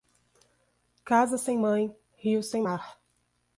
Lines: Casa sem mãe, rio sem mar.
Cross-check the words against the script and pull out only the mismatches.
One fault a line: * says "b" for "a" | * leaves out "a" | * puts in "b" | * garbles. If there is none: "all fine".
all fine